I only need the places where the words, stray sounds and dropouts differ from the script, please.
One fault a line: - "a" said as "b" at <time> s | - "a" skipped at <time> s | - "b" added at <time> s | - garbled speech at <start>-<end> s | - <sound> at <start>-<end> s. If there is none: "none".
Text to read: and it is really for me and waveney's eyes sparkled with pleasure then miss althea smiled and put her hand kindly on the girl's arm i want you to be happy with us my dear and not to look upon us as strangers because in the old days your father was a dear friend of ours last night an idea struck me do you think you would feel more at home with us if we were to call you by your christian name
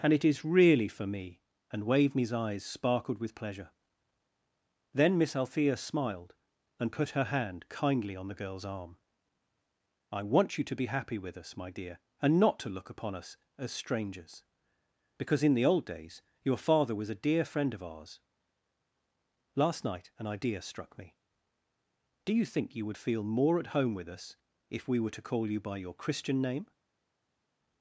none